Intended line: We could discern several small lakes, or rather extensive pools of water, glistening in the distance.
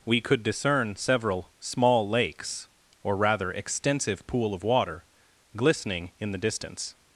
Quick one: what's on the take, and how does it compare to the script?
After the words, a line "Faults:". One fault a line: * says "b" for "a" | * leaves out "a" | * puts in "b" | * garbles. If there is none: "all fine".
We could discern several small lakes, or rather extensive pool of water, glistening in the distance.
Faults:
* says "pool" for "pools"